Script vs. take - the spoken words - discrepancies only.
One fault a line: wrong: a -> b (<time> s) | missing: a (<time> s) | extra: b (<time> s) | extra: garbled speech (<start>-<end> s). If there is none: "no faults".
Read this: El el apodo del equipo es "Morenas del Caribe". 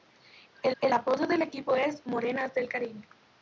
no faults